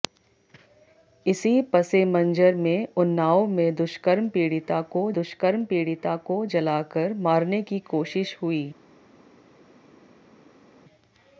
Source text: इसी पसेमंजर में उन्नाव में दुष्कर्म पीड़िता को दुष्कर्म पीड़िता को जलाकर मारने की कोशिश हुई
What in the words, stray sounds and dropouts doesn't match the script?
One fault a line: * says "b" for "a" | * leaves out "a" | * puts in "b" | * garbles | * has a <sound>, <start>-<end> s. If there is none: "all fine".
all fine